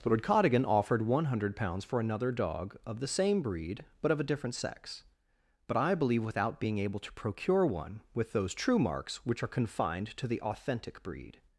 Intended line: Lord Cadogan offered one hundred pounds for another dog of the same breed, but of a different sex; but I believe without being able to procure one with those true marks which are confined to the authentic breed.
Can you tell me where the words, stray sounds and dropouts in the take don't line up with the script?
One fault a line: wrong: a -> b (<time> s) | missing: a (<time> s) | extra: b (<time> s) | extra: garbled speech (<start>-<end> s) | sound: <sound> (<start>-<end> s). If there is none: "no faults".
no faults